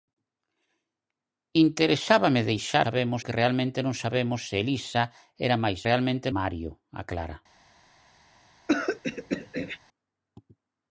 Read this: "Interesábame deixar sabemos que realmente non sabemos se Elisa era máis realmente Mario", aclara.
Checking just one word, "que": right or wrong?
right